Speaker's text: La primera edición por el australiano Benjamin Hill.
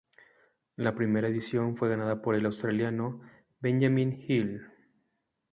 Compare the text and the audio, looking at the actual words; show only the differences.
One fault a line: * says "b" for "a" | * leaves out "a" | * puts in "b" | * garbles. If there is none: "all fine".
* puts in "fue ganada"